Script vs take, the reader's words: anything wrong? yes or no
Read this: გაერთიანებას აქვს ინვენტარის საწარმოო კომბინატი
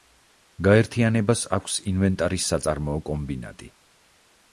no